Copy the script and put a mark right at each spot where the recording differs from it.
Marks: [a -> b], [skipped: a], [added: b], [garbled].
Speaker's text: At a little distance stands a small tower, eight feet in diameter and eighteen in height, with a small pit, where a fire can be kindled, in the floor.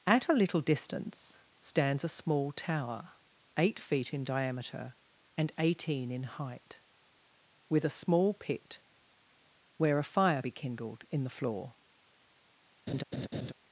At a little distance stands a small tower, eight feet in diameter and eighteen in height, with a small pit, where a fire [skipped: can] be kindled, in the floor.